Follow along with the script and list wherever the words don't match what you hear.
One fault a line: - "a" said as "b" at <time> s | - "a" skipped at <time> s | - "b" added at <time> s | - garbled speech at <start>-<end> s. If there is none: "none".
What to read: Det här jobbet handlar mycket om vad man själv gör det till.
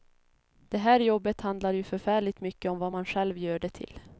- "ju förfärligt" added at 1.7 s